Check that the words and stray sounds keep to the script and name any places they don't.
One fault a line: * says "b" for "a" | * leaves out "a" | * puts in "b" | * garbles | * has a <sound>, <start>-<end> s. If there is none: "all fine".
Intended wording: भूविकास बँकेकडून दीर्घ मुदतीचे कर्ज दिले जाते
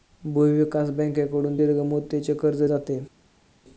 * leaves out "दिले"